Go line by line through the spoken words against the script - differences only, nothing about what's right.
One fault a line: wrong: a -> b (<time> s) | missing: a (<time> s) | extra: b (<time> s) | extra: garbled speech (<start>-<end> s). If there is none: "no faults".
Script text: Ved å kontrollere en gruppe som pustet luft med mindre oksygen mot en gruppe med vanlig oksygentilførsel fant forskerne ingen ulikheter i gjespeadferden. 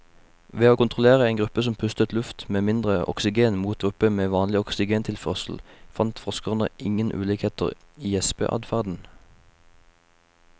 missing: en (3.8 s)